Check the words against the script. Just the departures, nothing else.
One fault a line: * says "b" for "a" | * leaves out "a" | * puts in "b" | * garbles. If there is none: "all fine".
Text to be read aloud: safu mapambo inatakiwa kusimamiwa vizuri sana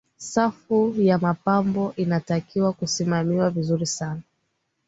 * puts in "ya"